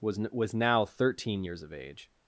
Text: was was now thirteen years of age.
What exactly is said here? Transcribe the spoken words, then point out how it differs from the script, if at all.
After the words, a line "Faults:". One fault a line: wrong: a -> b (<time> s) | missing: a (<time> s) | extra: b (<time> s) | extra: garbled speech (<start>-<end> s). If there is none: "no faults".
was was now thirteen years of age.
Faults:
no faults